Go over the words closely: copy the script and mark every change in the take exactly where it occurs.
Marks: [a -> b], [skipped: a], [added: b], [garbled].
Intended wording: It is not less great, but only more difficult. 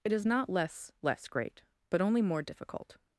It is not less [added: less] great, but only more difficult.